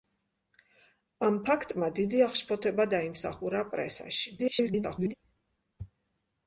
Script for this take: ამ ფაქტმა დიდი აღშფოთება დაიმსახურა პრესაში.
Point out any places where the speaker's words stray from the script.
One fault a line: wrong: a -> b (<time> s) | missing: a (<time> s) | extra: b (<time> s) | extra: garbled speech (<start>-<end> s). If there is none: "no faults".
extra: garbled speech (4.4-5.1 s)